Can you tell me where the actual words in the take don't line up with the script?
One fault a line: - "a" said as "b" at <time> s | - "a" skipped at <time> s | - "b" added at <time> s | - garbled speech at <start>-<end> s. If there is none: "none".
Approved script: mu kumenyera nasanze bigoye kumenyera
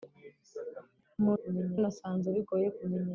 none